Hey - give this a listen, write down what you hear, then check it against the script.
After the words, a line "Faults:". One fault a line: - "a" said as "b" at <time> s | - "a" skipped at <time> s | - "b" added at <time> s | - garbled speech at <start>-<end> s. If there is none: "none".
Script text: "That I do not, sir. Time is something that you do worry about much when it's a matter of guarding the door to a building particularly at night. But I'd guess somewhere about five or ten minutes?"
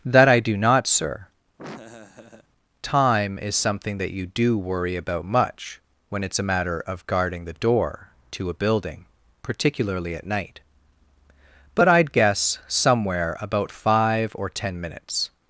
"That I do not, sir. Time is something that you do worry about much when it's a matter of guarding the door to a building particularly at night. But I'd guess somewhere about five or ten minutes?"
Faults:
none